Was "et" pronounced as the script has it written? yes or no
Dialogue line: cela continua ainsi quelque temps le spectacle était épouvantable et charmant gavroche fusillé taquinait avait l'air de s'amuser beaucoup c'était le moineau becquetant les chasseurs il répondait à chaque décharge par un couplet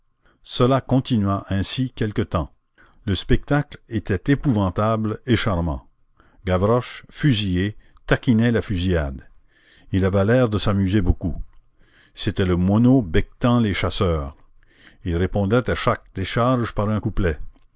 yes